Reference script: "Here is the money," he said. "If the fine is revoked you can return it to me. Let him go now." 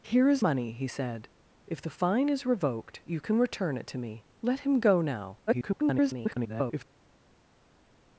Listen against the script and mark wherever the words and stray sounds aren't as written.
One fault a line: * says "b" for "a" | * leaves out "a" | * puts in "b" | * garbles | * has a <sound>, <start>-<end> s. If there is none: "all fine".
* leaves out "the"
* garbles